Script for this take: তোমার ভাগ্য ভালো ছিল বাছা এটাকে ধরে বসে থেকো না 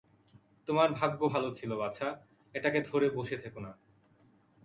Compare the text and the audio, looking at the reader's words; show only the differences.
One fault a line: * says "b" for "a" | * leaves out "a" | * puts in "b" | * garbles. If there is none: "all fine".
all fine